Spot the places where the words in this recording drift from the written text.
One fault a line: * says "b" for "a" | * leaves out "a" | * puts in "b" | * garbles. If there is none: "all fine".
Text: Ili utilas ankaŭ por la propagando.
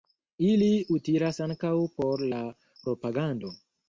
all fine